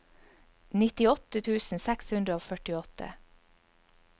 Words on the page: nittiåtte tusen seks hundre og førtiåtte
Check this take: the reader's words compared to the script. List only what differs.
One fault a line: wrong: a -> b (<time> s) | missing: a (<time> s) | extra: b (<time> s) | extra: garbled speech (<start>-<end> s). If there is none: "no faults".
no faults